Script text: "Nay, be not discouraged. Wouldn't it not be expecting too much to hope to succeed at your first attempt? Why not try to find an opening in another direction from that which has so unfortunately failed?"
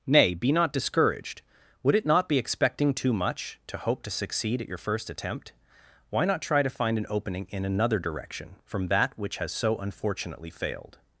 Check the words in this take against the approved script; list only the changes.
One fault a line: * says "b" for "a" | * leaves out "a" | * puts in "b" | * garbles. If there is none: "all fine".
* says "Would" for "Wouldn't"